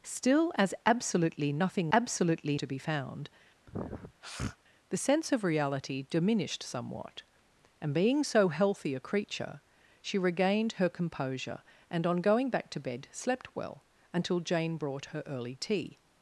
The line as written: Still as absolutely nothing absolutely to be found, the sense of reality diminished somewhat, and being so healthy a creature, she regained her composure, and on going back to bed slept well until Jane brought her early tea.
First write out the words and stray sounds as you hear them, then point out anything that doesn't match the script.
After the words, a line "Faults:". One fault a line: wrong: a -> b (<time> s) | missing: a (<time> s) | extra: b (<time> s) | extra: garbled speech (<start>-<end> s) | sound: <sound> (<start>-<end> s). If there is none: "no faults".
Still as absolutely nothing absolutely to be found, the sense of reality diminished somewhat, and being so healthy a creature, she regained her composure, and on going back to bed slept well until Jane brought her early tea.
Faults:
sound: sniff (3.7-4.6 s)